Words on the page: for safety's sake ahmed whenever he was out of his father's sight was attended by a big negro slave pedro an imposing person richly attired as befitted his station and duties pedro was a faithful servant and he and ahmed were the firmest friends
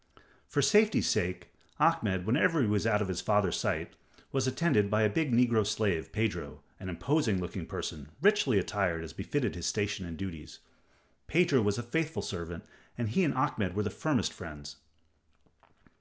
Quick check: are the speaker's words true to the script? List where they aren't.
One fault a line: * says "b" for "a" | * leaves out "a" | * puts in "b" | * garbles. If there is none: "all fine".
* puts in "looking"